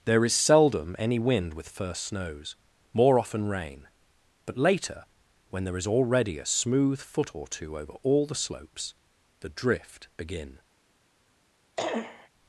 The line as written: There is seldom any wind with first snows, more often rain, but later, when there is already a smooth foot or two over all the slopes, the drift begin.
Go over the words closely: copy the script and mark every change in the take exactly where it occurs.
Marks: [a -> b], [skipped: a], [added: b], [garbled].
There is seldom any wind with first snows, more often rain, but later, when there is already a smooth foot or two over all the slopes, the drift begin.